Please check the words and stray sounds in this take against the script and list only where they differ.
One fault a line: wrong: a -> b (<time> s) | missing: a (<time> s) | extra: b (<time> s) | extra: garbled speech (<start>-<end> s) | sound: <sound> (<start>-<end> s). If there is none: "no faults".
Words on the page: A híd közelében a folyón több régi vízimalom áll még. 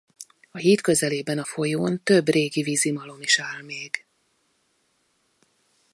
extra: is (3.2 s)